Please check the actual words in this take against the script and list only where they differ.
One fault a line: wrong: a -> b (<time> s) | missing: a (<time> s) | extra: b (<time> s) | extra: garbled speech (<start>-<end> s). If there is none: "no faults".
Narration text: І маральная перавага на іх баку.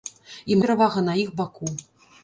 missing: маральная (0.6 s)